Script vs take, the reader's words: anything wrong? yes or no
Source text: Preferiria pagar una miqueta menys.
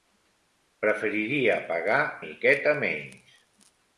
yes